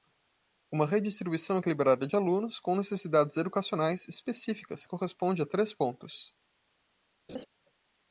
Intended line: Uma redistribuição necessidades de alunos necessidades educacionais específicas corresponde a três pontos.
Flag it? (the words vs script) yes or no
yes